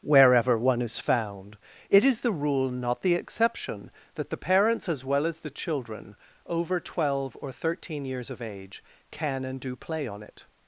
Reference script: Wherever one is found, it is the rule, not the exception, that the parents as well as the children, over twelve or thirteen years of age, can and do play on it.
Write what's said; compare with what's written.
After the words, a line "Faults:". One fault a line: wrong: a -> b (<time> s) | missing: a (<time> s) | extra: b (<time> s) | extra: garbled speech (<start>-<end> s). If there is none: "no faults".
Wherever one is found, it is the rule, not the exception, that the parents as well as the children, over twelve or thirteen years of age, can and do play on it.
Faults:
no faults